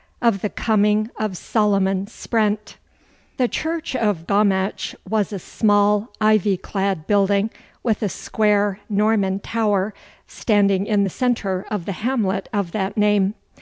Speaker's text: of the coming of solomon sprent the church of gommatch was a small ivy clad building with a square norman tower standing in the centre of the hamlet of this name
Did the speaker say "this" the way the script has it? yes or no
no